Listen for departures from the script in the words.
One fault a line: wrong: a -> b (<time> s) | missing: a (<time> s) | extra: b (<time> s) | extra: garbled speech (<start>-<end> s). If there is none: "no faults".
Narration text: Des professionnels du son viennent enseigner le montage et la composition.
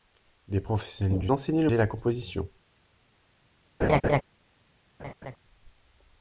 missing: son viennent (1.3 s)
missing: montage (1.7 s)